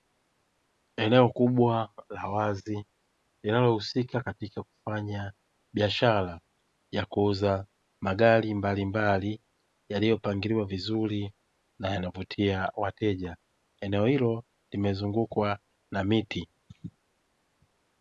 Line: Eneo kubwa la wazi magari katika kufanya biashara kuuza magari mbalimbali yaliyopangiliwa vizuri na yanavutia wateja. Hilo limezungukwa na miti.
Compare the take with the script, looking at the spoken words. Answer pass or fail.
fail